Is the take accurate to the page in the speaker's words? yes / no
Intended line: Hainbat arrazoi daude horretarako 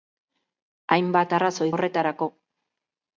no